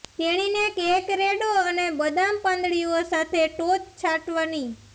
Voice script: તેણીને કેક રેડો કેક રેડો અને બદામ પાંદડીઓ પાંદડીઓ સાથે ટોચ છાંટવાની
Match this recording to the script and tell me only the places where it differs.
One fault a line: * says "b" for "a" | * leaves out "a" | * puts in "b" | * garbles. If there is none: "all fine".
* leaves out "કેક રેડો"
* leaves out "પાંદડીઓ"